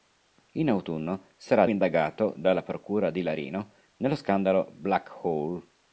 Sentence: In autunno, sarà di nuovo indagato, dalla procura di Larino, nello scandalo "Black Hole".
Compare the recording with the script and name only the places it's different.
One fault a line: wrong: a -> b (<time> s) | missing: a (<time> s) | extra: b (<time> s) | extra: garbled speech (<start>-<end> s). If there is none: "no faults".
missing: di nuovo (1.7 s)